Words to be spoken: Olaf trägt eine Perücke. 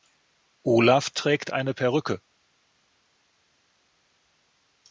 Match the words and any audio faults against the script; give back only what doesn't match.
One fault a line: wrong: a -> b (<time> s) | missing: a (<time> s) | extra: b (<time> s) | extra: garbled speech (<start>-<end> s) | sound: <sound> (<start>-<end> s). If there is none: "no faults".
no faults